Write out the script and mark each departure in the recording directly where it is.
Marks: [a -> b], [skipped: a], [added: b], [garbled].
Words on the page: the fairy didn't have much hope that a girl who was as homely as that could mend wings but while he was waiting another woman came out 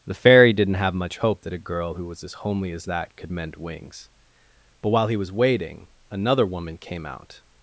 the fairy didn't have much hope that a girl who was as homely as that could mend wings but while he was waiting another woman came out